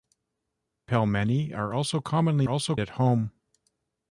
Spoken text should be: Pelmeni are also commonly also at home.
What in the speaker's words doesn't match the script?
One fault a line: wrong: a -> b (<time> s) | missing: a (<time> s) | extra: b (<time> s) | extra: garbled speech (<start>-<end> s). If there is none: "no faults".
no faults